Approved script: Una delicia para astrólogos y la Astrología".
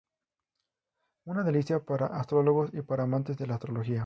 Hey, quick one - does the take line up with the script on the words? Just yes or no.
no